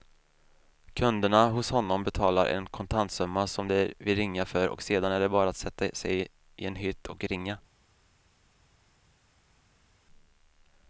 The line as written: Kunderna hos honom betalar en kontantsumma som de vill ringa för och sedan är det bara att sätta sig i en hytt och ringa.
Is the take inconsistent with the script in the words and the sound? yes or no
no